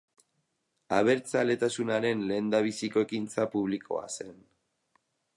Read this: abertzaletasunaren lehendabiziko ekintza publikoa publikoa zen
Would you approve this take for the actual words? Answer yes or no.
no